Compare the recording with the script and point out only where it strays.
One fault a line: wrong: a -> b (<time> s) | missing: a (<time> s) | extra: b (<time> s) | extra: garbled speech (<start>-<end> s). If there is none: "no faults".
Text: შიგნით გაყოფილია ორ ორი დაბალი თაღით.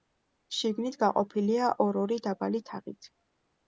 no faults